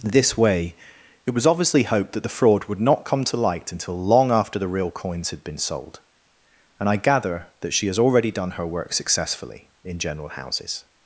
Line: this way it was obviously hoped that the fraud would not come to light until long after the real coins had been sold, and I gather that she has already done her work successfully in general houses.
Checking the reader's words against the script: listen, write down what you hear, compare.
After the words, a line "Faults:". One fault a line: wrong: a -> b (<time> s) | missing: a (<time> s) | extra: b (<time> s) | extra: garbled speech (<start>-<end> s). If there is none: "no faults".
this way it was obviously hoped that the fraud would not come to light until long after the real coins had been sold, and I gather that she has already done her work successfully in general houses.
Faults:
no faults